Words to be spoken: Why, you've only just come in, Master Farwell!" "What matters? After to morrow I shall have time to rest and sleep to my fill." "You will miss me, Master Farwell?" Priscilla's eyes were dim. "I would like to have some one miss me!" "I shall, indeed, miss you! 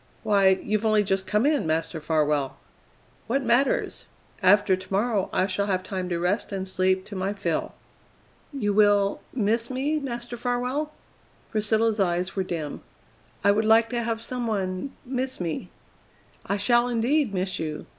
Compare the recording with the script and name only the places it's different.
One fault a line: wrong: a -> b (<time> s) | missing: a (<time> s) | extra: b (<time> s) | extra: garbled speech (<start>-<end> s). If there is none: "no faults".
no faults